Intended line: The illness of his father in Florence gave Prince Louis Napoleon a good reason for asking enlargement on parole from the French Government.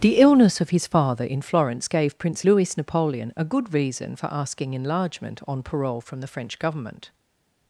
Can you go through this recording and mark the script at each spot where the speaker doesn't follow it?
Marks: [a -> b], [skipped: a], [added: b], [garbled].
The illness of his father in Florence gave Prince Louis Napoleon a good reason for asking enlargement on parole from the French Government.